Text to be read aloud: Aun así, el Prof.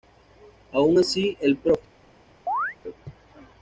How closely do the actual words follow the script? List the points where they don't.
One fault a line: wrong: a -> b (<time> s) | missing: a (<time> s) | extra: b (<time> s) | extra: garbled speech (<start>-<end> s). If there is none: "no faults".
no faults